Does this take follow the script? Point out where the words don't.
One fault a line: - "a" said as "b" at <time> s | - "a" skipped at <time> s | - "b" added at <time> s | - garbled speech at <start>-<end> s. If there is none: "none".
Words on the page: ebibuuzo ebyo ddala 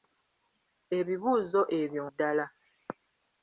none